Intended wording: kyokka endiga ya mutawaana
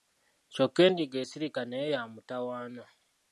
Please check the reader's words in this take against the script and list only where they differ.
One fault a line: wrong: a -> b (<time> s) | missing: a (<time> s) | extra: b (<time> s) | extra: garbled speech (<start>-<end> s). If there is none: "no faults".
extra: esirika naye (1.2 s)